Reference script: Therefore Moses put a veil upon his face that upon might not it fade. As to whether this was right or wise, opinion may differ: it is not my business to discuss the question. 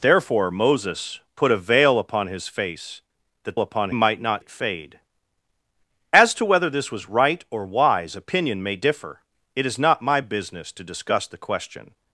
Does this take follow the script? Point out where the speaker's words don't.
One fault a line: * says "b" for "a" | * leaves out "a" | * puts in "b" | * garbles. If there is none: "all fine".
all fine